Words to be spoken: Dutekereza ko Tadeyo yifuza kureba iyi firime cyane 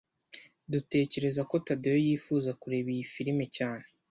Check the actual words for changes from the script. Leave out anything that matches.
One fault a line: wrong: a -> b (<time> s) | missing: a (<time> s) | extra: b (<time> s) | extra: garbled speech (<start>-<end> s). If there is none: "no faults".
no faults